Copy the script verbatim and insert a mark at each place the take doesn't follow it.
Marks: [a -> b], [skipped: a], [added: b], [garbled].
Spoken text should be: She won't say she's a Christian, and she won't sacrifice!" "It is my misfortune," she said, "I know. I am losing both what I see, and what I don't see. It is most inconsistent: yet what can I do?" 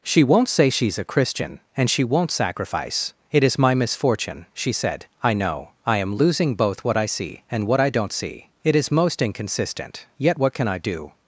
She won't say she's a Christian, and she won't sacrifice!" "It is my misfortune," she said, "I know. I am losing both what I see, and what I don't see. It is most inconsistent: yet what can I do?"